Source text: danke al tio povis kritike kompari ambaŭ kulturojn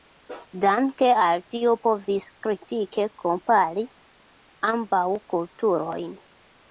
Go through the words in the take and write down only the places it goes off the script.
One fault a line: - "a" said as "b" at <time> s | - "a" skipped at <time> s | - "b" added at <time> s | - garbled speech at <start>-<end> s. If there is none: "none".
none